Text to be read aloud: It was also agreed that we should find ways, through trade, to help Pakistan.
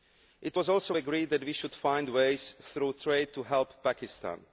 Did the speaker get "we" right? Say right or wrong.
right